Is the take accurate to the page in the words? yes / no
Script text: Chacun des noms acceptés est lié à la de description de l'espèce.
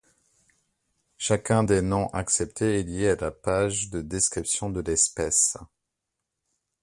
no